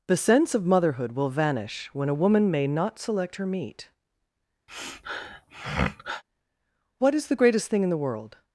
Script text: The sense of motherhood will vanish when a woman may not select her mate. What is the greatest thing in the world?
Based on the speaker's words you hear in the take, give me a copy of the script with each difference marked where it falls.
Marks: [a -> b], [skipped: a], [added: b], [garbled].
The sense of motherhood will vanish when a woman may not select her [mate. -> meat] What is the greatest thing in the world?